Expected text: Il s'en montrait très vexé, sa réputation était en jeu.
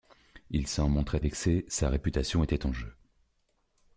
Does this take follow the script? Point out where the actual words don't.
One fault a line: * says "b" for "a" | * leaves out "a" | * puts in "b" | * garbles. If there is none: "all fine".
* leaves out "très"